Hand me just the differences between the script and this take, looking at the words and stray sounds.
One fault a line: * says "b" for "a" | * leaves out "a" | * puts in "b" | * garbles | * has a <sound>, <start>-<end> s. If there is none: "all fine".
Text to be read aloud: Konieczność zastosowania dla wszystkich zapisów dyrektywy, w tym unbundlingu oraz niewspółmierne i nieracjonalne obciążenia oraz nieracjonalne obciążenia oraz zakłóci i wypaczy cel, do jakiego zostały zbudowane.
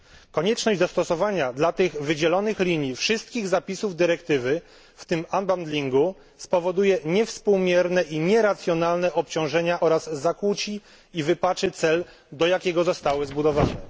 * puts in "tych wydzielonych linii"
* says "spowoduje" for "oraz"
* leaves out "nieracjonalne obciążenia oraz"